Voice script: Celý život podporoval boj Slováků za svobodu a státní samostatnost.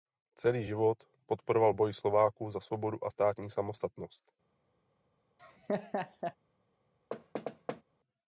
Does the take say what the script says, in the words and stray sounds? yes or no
no